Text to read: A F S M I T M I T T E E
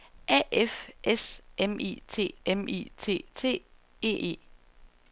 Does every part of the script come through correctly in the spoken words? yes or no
yes